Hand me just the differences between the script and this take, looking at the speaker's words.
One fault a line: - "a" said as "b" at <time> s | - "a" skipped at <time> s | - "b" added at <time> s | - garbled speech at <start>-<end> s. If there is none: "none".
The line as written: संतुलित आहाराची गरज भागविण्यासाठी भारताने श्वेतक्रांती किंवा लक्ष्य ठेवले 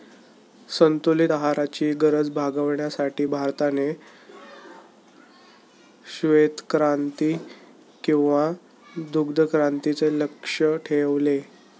- "दुग्धक्रांतीचे" added at 9.1 s